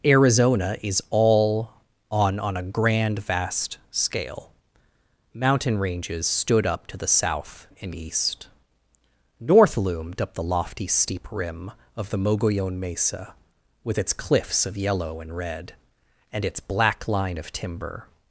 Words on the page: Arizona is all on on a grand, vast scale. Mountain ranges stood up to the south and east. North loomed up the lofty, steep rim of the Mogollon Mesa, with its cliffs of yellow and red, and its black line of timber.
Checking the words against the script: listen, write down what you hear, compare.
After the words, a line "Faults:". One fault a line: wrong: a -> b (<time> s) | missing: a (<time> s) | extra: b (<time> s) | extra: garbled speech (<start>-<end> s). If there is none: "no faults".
Arizona is all on on a grand, vast scale. Mountain ranges stood up to the south and east. North loomed up the lofty, steep rim of the Mogollon Mesa, with its cliffs of yellow and red, and its black line of timber.
Faults:
no faults